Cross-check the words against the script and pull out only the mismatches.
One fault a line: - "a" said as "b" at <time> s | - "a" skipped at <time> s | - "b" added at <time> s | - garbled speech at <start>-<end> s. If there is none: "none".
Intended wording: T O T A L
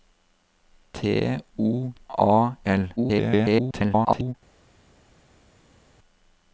- "T" skipped at 1.9 s
- garbled speech at 3.0-4.3 s